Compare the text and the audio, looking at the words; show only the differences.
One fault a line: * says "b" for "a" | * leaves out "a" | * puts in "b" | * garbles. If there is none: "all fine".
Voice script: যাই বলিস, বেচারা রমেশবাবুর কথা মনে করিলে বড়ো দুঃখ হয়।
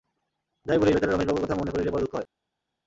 all fine